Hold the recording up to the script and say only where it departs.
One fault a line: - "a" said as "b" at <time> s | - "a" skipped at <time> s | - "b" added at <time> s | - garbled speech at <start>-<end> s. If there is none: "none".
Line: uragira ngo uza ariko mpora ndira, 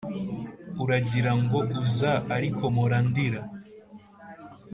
none